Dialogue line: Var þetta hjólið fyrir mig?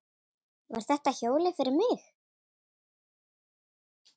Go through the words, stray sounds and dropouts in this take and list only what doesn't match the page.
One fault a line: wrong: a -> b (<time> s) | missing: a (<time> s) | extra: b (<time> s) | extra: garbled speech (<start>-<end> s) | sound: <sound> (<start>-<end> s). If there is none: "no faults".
no faults